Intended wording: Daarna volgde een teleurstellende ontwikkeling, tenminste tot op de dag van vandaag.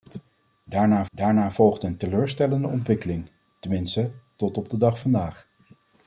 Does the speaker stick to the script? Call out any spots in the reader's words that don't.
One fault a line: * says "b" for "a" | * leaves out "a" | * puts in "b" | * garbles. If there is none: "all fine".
* puts in "daarna"
* leaves out "van"